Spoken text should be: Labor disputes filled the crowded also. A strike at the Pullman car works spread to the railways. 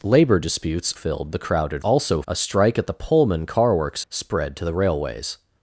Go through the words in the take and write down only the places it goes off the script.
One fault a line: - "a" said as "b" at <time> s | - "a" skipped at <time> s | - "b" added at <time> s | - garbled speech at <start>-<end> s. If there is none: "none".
none